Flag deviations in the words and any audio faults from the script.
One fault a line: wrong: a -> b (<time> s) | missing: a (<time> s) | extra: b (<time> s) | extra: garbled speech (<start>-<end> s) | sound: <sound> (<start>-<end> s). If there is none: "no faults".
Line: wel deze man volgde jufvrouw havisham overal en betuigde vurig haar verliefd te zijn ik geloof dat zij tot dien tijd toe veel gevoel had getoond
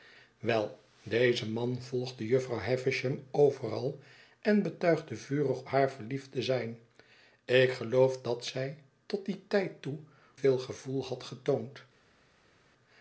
no faults